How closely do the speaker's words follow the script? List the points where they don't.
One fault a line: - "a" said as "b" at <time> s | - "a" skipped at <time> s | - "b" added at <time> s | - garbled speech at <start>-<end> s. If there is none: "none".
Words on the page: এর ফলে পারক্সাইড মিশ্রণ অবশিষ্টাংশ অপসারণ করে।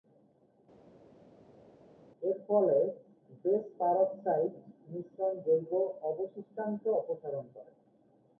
- "বেস" added at 3.4 s
- "জৈব" added at 5.4 s